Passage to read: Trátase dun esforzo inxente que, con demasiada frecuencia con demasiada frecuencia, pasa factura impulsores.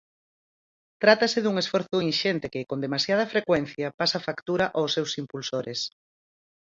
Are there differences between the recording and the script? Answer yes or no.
yes